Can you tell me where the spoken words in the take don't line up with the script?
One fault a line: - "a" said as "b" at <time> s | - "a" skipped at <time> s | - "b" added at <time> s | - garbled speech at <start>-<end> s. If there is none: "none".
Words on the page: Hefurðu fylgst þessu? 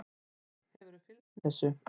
none